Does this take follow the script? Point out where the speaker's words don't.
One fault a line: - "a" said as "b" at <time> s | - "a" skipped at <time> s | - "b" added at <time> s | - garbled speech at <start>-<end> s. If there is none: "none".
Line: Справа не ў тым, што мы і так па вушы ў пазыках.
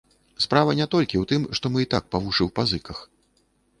- "толькі" added at 0.9 s